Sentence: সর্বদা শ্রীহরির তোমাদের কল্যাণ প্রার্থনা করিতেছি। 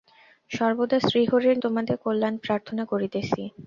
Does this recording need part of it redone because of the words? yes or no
no